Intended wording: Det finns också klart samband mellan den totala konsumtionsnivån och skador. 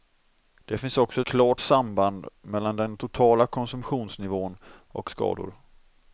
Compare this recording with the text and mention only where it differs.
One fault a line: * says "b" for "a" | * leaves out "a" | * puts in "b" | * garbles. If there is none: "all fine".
all fine